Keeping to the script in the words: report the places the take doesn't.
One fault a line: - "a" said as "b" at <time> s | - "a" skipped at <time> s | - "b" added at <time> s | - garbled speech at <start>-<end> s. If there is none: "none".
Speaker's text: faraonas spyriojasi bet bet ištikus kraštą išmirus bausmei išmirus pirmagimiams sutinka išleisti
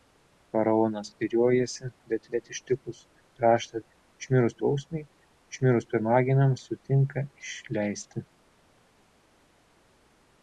none